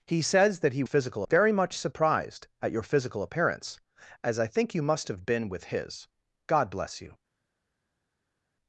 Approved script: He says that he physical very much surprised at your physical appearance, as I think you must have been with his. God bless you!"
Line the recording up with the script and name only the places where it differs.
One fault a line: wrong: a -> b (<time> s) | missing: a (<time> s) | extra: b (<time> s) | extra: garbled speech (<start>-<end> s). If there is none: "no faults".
no faults